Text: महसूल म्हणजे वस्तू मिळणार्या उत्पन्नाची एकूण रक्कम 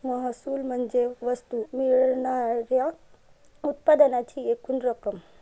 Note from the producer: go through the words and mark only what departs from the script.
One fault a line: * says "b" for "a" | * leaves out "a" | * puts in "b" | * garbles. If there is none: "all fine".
all fine